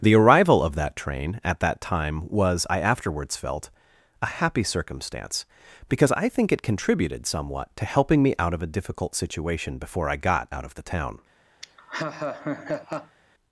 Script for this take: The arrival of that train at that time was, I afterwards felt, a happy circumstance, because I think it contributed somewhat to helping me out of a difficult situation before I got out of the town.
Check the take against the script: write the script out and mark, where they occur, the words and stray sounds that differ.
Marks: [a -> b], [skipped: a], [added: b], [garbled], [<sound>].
The arrival of that train at that time was, I afterwards felt, a happy circumstance, because I think it contributed somewhat to helping me out of a difficult situation before I got out of the town. [laugh]